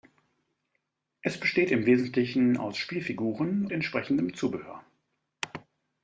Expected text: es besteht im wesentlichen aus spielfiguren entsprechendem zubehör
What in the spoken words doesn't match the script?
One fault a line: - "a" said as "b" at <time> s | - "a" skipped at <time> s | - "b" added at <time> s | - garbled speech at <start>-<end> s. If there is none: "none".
none